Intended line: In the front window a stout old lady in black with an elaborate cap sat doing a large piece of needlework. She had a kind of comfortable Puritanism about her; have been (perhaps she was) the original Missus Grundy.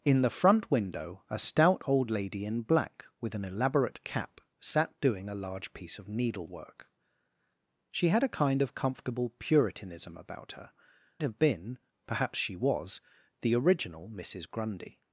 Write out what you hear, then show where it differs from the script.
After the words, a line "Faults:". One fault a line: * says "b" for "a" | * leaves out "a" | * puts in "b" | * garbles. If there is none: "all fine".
In the front window a stout old lady in black with an elaborate cap sat doing a large piece of needlework. She had a kind of comfortable Puritanism about her; have been (perhaps she was) the original Missus Grundy.
Faults:
all fine